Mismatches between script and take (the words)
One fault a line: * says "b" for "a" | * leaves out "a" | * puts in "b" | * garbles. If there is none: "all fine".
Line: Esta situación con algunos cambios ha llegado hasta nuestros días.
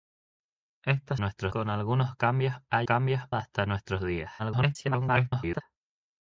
* says "nuestros" for "situación"
* says "cambios" for "llegado"
* garbles